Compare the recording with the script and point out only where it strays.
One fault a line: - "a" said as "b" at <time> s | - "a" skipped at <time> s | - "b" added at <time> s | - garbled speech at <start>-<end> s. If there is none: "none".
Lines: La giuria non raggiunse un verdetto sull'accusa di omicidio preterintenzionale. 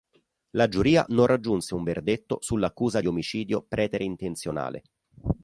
none